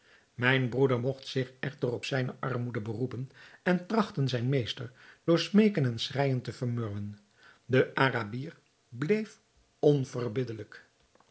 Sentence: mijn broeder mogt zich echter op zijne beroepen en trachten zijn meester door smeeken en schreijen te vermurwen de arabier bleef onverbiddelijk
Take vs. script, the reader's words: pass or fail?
fail